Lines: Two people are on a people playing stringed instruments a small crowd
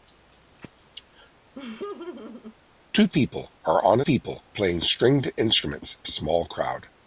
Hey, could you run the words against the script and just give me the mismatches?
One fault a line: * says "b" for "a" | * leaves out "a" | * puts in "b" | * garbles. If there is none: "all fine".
all fine